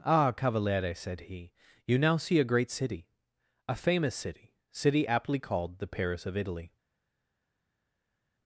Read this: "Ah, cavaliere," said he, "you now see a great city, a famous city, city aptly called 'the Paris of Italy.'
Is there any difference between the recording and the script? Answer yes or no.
no